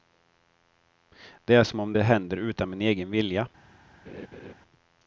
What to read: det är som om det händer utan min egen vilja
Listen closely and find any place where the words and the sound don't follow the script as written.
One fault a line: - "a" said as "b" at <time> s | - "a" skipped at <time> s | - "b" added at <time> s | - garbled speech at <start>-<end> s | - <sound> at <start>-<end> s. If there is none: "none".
- laugh at 4.0-4.5 s